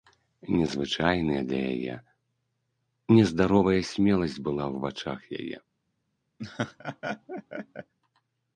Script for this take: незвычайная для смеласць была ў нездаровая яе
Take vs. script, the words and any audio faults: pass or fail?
fail